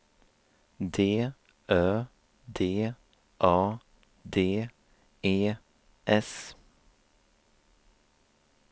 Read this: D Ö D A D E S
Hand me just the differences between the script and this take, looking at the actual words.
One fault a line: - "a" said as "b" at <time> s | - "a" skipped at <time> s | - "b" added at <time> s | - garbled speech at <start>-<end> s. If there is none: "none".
none